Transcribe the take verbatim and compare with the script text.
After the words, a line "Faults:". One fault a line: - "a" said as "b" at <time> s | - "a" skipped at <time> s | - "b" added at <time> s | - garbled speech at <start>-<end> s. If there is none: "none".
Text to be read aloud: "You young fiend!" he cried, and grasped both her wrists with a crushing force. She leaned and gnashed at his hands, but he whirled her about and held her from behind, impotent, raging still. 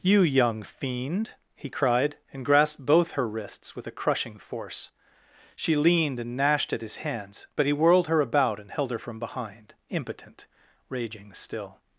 "You young fiend!" he cried, and grasped both her wrists with a crushing force. She leaned and gnashed at his hands, but he whirled her about and held her from behind, impotent, raging still.
Faults:
none